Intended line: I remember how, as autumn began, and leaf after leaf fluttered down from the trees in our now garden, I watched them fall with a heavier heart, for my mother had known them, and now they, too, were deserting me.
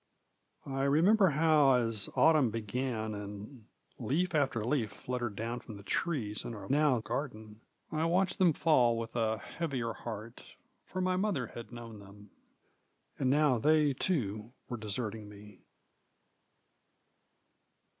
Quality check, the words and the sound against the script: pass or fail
pass